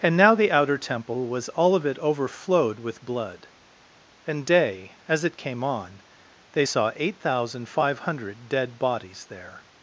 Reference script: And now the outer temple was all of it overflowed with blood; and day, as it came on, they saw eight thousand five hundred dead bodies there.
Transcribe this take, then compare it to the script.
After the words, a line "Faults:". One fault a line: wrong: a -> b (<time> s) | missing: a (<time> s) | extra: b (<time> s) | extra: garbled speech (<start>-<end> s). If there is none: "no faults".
And now the outer temple was all of it overflowed with blood; and day, as it came on, they saw eight thousand five hundred dead bodies there.
Faults:
no faults